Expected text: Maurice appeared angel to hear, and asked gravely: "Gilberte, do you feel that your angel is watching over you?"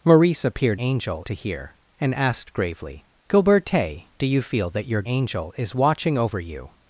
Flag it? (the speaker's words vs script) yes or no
no